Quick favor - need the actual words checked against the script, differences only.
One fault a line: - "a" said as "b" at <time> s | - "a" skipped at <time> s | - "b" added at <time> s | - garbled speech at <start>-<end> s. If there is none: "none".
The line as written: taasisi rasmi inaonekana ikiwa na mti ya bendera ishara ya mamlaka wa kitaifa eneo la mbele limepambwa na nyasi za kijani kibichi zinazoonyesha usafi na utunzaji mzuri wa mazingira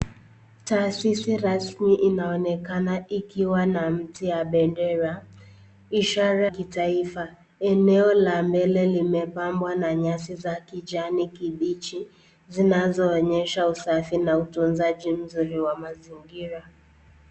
- "ya mamlaka wa" skipped at 6.5 s